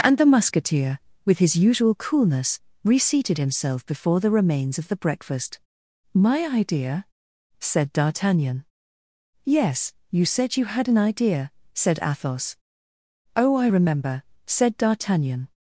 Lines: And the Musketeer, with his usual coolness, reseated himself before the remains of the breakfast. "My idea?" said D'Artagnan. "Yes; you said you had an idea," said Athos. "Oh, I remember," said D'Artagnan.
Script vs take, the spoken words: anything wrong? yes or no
no